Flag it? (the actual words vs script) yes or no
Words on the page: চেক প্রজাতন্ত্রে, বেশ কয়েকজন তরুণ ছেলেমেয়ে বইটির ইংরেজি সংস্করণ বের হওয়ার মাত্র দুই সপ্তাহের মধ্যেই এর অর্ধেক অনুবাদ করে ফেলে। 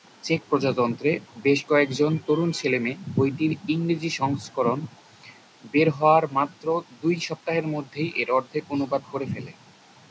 no